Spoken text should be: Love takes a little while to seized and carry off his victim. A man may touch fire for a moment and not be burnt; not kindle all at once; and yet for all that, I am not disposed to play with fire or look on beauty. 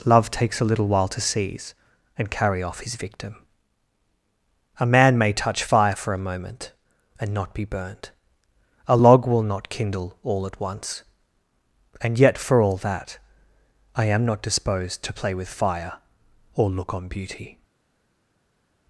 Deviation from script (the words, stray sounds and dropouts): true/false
true